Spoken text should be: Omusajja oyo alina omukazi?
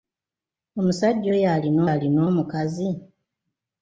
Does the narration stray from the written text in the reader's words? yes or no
yes